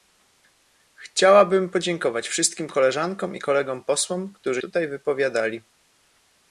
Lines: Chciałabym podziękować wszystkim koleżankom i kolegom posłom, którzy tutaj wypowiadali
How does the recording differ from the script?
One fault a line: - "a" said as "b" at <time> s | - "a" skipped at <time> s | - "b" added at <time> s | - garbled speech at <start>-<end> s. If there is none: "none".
none